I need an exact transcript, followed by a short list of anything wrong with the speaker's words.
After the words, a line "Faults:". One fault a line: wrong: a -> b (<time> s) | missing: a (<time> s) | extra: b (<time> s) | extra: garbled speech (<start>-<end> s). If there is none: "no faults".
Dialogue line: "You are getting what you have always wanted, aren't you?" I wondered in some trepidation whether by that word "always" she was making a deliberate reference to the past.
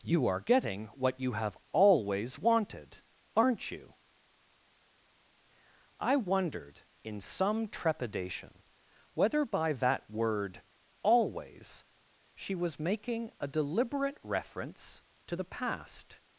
"You are getting what you have always wanted, aren't you?" I wondered in some trepidation whether by that word "always" she was making a deliberate reference to the past.
Faults:
no faults